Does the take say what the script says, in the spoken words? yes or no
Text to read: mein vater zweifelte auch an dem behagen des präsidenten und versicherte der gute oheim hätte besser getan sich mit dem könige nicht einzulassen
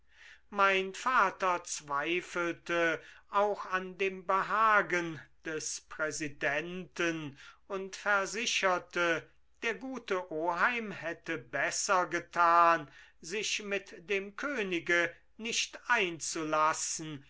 yes